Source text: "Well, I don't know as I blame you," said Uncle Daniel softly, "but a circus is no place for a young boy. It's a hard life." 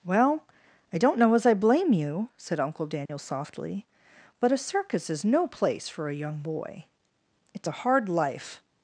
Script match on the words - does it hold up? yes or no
yes